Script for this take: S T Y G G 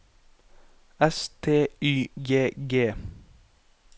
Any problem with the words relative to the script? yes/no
no